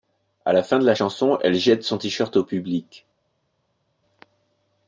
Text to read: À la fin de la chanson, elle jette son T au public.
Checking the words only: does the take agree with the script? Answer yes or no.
no